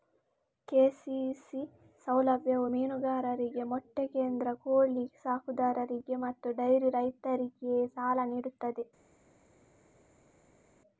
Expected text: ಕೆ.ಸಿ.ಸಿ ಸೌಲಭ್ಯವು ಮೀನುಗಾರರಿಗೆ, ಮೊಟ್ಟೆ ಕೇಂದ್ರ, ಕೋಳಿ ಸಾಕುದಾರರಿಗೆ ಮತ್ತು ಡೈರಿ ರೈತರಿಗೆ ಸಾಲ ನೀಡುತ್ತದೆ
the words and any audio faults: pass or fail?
pass